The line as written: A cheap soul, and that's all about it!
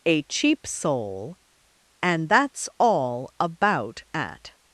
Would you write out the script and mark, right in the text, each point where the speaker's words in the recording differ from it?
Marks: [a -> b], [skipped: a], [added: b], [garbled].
A cheap soul, and that's all about [it! -> at]